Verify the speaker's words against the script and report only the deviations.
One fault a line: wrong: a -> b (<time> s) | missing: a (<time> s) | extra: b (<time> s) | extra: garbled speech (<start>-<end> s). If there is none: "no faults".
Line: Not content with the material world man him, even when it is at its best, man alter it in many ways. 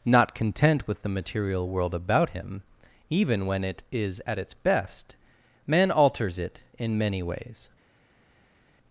wrong: man -> about (1.9 s)
wrong: alter -> alters (5.9 s)